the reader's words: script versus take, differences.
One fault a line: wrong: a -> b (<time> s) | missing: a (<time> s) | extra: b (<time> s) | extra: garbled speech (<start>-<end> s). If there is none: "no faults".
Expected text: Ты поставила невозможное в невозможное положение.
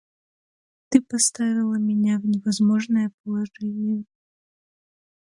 wrong: невозможное -> меня (1.8 s)